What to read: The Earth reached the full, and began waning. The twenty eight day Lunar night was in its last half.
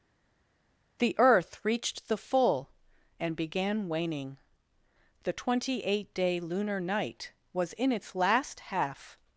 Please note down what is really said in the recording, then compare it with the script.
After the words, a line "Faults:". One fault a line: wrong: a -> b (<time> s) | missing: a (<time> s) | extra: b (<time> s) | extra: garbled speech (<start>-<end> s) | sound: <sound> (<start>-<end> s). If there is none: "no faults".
The Earth reached the full, and began waning. The twenty eight day Lunar night was in its last half.
Faults:
no faults